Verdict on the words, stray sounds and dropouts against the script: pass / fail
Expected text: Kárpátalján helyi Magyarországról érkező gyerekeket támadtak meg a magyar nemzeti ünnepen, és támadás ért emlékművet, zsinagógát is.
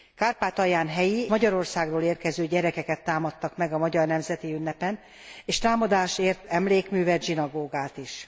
pass